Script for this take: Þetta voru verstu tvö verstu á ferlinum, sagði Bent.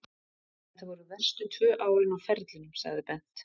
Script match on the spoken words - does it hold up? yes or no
no